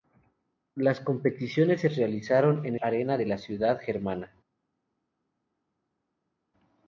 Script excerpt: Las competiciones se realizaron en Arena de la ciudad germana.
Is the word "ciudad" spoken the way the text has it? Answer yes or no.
yes